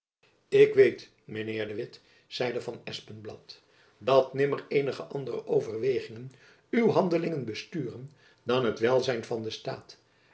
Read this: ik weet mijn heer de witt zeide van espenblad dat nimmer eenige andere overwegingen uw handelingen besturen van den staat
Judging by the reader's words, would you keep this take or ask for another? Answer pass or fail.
fail